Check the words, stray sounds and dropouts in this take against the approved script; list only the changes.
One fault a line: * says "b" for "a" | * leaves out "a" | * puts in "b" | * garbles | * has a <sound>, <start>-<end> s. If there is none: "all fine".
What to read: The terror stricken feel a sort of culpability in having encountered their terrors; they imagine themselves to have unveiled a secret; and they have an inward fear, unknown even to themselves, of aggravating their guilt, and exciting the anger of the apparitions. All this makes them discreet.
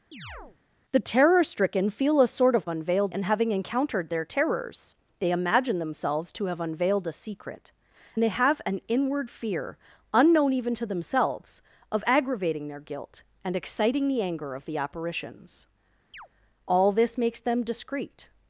* has a chirp, 0.1-0.6 s
* says "unveiled" for "culpability"
* leaves out "and"
* has a chirp, 16.1-16.3 s